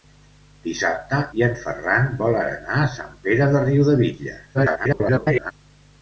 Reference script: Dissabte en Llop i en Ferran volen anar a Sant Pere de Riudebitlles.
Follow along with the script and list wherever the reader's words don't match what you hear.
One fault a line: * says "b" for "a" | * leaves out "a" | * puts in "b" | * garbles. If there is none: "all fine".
* leaves out "en Llop"
* garbles